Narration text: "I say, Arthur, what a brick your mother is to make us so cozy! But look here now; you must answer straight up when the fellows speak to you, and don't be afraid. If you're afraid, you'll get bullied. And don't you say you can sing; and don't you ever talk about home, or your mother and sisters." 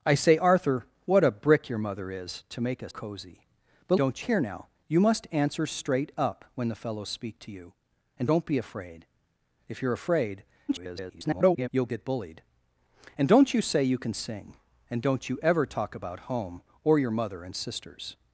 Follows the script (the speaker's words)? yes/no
no